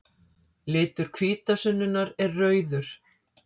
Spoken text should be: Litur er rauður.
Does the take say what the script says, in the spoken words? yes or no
no